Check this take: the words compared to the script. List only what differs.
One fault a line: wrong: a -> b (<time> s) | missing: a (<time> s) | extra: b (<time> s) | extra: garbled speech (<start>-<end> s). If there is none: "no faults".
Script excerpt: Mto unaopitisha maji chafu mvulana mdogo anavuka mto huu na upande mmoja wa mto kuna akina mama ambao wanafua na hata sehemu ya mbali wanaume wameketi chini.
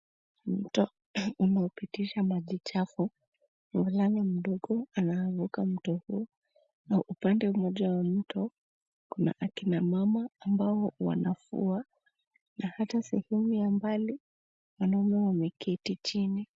no faults